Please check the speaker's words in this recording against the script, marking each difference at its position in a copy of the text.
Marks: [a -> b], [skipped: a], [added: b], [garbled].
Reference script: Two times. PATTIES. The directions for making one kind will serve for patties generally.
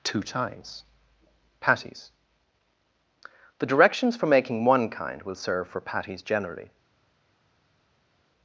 Two times. PATTIES. The directions for making one kind will serve for patties generally.